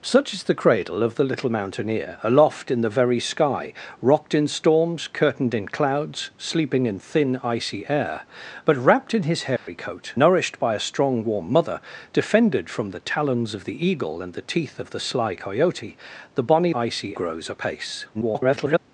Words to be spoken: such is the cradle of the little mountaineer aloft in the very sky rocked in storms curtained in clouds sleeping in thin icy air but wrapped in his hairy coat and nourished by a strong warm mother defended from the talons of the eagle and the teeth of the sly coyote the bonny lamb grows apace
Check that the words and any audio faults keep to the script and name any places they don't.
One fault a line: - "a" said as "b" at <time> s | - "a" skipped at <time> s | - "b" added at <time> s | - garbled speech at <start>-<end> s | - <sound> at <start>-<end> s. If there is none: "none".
- dropout at 9.6-9.7 s
- "and" skipped at 10.2 s
- "lamb" said as "icy" at 16.7 s
- garbled speech at 18.1-18.8 s